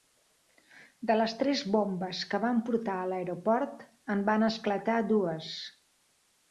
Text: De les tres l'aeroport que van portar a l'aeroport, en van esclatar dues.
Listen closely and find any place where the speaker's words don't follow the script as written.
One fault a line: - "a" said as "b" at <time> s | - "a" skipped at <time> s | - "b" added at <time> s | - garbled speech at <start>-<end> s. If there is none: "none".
- "l'aeroport" said as "bombes" at 1.8 s